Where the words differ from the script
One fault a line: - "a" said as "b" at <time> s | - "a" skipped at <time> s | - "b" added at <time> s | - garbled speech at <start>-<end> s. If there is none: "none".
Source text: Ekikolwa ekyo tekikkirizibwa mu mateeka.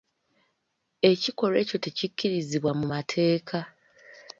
none